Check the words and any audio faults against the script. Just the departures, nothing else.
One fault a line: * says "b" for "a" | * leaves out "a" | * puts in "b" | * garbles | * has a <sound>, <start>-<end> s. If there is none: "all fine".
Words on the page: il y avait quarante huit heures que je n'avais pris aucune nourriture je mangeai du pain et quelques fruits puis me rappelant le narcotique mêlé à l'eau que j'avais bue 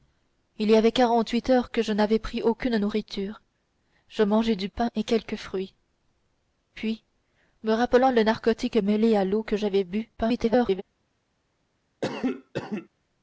* garbles
* has a cough, 12.0-12.9 s